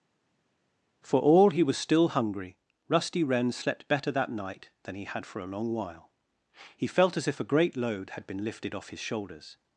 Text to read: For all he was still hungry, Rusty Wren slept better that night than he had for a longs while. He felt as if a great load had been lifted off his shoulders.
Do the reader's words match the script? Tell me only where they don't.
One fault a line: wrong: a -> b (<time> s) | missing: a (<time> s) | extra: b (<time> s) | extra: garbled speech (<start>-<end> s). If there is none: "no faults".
wrong: longs -> long (5.5 s)